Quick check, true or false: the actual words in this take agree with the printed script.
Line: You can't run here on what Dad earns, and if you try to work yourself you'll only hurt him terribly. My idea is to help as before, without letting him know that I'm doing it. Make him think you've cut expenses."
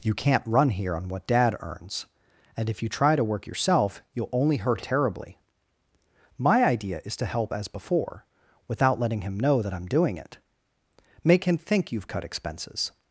false